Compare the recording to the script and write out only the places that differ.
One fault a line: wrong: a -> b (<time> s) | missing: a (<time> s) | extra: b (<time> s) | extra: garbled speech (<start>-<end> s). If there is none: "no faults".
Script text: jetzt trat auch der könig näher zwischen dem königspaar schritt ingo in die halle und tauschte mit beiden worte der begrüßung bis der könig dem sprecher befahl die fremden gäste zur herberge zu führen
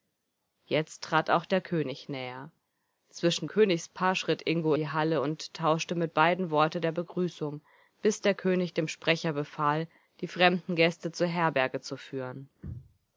missing: dem (3.5 s)
missing: in (4.7 s)